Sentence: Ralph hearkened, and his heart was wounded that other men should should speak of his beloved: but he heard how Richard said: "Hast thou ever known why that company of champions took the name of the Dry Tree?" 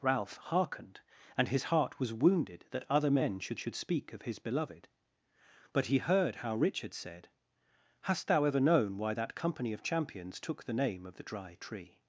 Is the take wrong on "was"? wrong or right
right